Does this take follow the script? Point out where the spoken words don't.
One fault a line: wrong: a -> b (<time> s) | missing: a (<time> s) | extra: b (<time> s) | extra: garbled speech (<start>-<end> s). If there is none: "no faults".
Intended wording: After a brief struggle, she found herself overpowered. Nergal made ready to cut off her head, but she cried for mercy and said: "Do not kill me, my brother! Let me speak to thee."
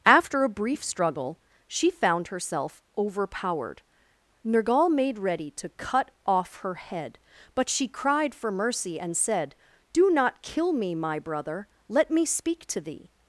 no faults